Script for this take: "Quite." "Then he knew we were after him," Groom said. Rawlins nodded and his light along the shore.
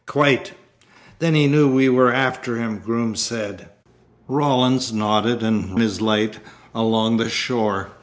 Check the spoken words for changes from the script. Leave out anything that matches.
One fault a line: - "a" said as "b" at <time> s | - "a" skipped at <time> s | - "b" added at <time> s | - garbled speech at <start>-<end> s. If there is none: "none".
none